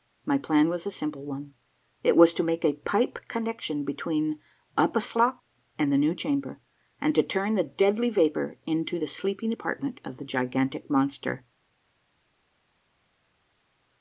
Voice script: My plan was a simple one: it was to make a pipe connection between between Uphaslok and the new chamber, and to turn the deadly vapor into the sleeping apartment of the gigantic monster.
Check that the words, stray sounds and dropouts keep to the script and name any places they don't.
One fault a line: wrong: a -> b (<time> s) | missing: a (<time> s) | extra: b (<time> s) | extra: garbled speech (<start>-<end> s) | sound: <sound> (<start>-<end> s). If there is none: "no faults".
missing: between (4.4 s)